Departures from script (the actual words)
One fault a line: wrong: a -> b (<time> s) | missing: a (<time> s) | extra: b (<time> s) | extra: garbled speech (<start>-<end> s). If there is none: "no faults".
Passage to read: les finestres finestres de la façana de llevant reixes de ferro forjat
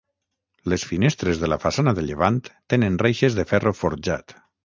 missing: finestres (1.4 s)
extra: tenen (2.7 s)